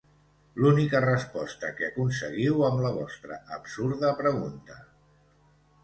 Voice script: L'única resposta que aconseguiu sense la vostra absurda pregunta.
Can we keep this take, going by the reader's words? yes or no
no